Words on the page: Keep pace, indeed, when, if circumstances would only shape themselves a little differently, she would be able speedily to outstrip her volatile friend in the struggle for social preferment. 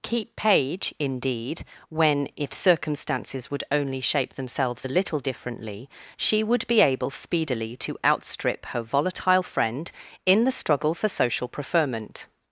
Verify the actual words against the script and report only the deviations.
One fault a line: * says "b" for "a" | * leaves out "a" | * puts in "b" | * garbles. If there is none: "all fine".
* says "page" for "pace"